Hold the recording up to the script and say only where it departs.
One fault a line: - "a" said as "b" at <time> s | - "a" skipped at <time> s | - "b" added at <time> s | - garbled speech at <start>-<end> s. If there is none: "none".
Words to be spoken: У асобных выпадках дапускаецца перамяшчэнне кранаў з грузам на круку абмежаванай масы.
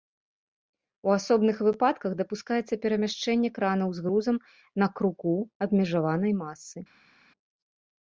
none